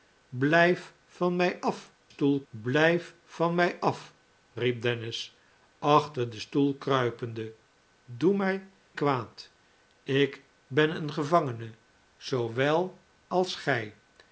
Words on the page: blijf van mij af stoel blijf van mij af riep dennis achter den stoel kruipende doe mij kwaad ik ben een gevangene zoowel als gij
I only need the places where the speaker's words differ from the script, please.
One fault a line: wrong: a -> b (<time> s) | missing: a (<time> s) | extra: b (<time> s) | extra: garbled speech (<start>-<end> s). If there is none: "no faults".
no faults